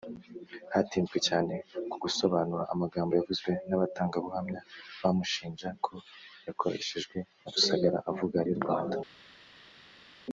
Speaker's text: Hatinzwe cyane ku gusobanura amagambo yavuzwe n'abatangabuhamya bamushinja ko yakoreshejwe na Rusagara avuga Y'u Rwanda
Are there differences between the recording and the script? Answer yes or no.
no